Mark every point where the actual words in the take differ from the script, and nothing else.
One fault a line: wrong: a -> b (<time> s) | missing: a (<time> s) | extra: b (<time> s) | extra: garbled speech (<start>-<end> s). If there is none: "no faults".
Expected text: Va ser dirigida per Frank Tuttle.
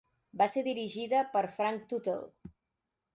no faults